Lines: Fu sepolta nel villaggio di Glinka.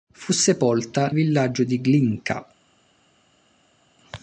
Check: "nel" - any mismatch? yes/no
yes